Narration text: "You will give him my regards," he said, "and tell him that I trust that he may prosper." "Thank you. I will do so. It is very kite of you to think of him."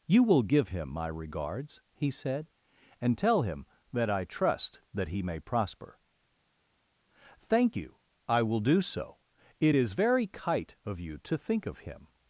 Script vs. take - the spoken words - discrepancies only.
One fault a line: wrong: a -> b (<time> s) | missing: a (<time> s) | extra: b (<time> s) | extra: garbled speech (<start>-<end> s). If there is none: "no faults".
no faults